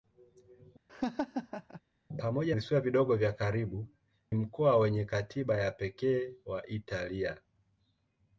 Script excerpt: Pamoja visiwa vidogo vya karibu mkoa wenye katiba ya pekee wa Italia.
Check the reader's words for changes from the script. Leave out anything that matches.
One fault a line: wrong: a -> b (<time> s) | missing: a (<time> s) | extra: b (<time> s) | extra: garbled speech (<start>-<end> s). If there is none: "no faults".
no faults